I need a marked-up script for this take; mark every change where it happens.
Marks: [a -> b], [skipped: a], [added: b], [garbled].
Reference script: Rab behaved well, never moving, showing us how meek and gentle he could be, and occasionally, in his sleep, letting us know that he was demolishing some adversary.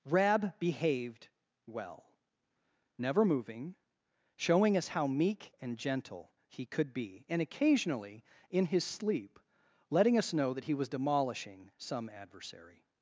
Rab behaved well, never moving, showing us how meek and gentle he could be, and occasionally, in his sleep, letting us know that he was demolishing some adversary.